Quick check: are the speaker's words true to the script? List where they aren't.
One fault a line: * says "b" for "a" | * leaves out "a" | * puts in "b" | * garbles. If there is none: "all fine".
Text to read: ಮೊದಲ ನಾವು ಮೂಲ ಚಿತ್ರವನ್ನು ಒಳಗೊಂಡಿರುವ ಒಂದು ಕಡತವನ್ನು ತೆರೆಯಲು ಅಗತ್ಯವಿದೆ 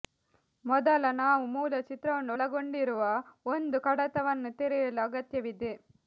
all fine